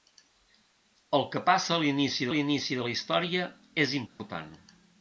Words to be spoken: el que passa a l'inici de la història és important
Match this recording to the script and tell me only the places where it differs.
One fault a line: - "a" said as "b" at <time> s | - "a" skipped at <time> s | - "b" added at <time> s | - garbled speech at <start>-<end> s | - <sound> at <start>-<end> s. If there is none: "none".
- "l'inici" added at 2.3 s
- dropout at 4.1-4.2 s